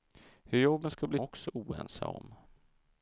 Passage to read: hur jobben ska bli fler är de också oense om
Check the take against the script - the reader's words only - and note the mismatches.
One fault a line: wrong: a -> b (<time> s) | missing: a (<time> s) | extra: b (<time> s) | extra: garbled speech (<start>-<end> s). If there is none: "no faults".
missing: fler är de (1.2 s)